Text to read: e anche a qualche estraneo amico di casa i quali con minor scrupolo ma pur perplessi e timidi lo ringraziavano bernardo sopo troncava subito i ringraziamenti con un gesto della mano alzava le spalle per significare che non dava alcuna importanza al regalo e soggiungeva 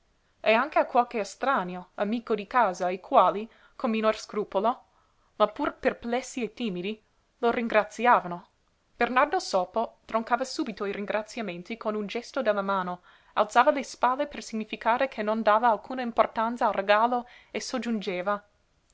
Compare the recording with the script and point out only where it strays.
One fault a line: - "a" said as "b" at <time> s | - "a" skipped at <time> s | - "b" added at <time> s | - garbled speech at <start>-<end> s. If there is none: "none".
none